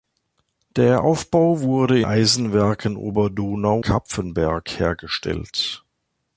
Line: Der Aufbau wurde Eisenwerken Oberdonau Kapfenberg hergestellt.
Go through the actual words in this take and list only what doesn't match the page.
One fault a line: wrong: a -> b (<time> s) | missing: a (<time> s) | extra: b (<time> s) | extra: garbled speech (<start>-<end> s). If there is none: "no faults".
no faults